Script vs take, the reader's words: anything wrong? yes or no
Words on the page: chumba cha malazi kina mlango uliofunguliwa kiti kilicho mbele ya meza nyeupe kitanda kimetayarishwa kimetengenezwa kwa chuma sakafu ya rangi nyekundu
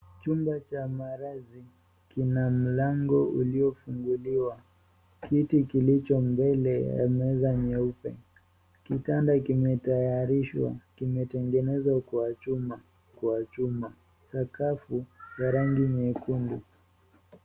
yes